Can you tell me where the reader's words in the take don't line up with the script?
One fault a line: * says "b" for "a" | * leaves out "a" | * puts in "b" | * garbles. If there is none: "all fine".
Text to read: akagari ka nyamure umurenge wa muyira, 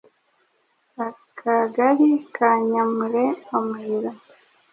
* leaves out "umurenge"